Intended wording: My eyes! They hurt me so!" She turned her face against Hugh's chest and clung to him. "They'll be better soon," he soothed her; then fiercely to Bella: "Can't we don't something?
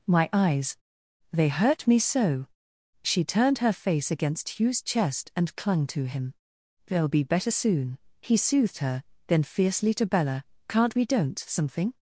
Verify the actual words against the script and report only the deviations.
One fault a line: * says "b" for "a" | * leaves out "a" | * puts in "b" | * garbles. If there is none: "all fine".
all fine